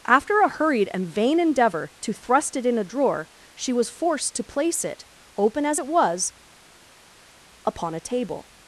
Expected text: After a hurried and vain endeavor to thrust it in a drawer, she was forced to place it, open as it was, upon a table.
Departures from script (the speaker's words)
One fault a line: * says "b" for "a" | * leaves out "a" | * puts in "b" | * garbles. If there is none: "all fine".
all fine